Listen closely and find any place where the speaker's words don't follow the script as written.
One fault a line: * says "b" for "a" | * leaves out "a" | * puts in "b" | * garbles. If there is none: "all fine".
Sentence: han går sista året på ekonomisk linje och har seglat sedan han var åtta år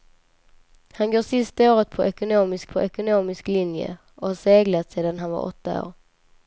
* puts in "på ekonomisk"